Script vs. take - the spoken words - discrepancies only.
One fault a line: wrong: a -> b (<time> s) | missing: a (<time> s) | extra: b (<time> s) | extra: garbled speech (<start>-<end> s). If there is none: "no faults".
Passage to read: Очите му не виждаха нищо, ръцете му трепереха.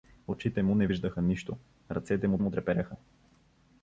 extra: му (2.4 s)